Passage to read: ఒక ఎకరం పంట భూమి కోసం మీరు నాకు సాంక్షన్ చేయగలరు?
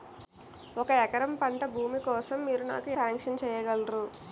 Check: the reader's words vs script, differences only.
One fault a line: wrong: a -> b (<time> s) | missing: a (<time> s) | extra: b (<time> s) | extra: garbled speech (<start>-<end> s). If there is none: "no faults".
no faults